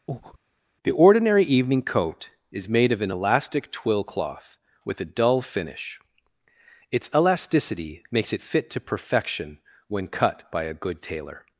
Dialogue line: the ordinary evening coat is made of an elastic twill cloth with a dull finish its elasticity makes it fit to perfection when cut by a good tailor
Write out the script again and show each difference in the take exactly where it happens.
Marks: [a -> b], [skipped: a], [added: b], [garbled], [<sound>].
[breath] the ordinary evening coat is made of an elastic twill cloth with a dull finish its elasticity makes it fit to perfection when cut by a good tailor